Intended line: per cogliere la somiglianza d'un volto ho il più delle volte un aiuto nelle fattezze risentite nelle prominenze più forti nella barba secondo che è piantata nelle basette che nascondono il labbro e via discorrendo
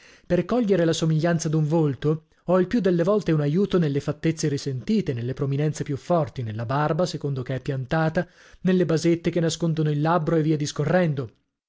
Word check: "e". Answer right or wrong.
right